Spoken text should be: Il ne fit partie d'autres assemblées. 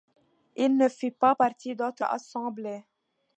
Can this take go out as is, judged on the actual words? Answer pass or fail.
fail